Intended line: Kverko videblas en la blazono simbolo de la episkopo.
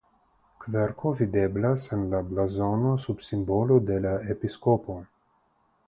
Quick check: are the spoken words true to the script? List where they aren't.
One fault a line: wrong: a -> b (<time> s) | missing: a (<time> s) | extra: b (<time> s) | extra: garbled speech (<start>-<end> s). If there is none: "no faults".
extra: sub (3.0 s)